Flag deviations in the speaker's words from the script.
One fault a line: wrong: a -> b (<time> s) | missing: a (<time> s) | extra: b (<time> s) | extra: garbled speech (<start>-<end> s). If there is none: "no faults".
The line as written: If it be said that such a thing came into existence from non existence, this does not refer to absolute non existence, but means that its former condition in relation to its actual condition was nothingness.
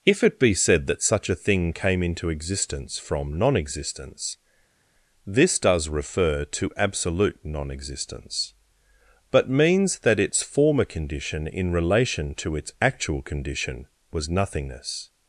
missing: not (5.9 s)